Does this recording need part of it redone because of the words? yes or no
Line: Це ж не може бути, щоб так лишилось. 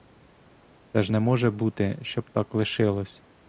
no